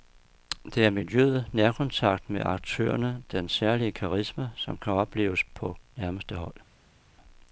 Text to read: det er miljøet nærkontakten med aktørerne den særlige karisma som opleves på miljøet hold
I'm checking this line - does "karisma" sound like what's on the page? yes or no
yes